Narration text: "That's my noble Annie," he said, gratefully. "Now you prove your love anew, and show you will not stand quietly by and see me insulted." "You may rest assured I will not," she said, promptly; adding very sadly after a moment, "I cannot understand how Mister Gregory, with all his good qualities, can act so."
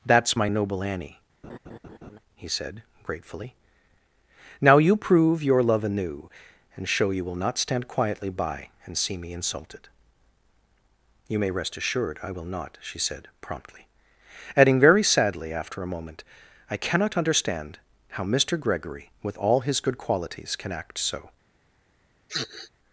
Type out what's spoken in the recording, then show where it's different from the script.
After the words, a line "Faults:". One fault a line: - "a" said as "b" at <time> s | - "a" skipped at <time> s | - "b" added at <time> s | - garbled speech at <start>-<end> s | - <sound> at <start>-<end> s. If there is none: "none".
"That's my noble Annie," he said, gratefully. "Now you prove your love anew, and show you will not stand quietly by and see me insulted." "You may rest assured I will not," she said, promptly; adding very sadly after a moment, "I cannot understand how Mister Gregory, with all his good qualities, can act so."
Faults:
- laugh at 1.4-2.2 s
- sniff at 22.3-22.7 s